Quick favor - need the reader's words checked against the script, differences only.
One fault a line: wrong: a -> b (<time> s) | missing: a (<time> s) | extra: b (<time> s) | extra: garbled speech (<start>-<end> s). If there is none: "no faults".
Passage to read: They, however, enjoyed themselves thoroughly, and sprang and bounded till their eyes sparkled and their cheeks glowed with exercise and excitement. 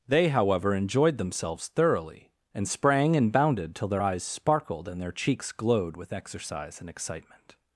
no faults